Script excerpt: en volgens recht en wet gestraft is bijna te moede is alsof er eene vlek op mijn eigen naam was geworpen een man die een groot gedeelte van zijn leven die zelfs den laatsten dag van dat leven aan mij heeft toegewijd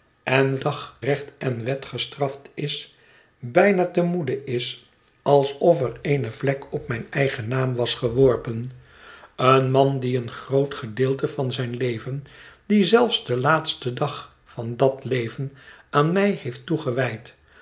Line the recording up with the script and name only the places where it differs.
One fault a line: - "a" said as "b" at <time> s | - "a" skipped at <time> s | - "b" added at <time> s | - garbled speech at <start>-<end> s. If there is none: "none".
- "volgens" said as "dag" at 0.6 s